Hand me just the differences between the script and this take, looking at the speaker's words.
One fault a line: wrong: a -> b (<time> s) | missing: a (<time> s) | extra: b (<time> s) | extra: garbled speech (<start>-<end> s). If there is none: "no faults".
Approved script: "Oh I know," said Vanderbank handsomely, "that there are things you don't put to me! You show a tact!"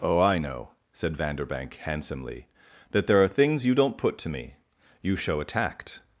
no faults